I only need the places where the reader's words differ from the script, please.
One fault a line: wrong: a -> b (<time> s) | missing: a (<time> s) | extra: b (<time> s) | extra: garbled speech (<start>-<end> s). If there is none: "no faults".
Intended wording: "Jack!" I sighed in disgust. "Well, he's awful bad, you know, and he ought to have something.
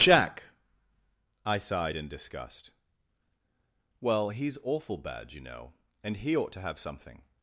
no faults